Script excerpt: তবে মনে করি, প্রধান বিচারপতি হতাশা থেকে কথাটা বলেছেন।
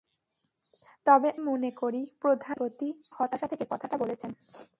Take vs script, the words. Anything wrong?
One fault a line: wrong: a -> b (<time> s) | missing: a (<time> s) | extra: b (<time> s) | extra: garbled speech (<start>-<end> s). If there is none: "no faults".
no faults